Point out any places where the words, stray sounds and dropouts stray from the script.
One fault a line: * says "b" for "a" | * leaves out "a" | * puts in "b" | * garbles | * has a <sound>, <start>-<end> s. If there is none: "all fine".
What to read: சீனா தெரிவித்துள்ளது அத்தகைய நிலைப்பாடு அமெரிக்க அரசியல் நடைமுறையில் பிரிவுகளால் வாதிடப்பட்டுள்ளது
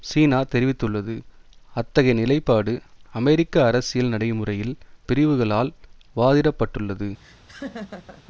* has a laugh, 7.2-8.2 s